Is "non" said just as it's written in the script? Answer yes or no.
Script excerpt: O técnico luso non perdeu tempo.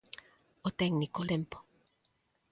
no